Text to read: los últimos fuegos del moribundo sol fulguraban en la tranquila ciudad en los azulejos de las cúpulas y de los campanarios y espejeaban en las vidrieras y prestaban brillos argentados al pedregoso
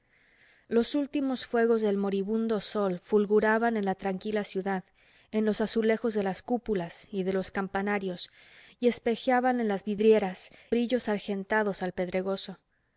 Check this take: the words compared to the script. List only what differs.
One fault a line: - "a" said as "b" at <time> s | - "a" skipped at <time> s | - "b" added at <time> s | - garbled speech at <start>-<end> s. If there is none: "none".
- "y prestaban" skipped at 10.5 s